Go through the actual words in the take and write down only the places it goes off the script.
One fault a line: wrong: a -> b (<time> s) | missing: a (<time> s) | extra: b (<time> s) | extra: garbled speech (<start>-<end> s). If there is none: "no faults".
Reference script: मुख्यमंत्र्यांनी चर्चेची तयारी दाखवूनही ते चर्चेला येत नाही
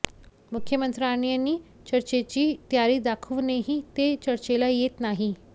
no faults